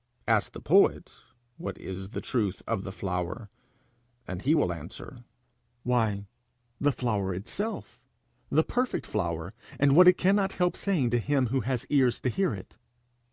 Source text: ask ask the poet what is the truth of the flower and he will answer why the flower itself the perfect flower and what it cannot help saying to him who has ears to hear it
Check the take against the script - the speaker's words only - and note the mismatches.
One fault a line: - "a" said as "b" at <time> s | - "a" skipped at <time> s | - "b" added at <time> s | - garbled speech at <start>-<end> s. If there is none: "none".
- "ask" skipped at 0.5 s